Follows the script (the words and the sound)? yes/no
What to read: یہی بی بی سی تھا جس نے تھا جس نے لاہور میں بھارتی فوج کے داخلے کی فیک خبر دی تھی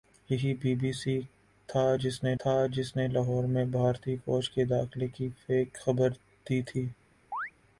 no